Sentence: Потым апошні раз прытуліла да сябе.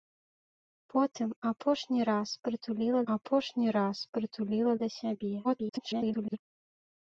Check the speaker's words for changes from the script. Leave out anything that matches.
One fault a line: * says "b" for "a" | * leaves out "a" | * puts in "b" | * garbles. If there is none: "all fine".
* puts in "апошні раз прытуліла"
* garbles